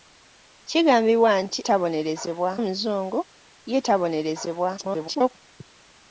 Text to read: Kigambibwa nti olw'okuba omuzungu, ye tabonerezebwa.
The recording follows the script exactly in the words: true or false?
false